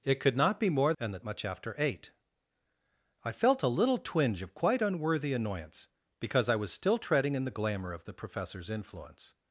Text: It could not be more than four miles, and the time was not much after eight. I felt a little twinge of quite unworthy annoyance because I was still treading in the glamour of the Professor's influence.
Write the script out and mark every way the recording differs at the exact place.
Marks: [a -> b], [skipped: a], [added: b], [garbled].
It could not be more [skipped: than four miles,] and the [skipped: time was not] much after eight. I felt a little twinge of quite unworthy annoyance because I was still treading in the glamour of the Professor's influence.